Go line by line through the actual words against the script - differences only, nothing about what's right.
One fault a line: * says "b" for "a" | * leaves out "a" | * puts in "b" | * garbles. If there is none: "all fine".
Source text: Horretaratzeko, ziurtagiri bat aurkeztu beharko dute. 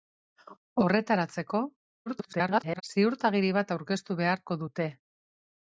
* garbles